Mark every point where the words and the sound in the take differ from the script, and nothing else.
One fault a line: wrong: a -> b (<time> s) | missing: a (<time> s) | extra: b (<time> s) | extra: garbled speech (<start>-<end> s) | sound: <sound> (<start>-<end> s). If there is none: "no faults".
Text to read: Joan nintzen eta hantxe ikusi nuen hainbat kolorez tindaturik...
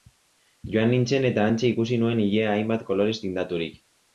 extra: ilea (2.3 s)